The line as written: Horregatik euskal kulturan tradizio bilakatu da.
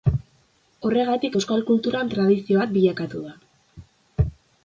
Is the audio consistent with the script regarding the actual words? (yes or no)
no